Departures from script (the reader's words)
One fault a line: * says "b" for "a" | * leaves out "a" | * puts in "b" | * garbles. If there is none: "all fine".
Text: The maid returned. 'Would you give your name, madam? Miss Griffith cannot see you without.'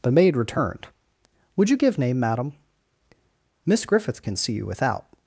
* leaves out "your"
* says "can" for "cannot"